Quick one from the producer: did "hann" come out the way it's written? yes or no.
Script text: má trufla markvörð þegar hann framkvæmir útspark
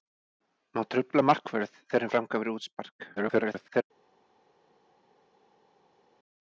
no